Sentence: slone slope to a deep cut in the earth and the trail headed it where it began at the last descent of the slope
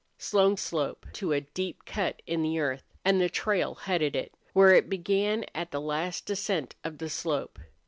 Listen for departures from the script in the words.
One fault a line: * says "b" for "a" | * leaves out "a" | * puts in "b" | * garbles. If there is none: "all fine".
all fine